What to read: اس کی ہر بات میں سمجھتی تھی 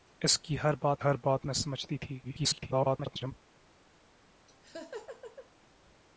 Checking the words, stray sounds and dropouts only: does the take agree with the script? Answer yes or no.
no